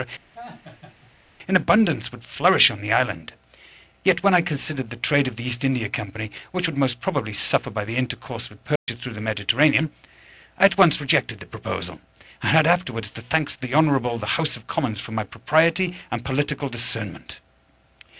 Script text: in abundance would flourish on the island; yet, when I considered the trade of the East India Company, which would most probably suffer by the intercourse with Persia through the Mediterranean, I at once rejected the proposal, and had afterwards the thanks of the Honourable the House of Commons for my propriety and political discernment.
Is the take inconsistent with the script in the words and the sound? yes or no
yes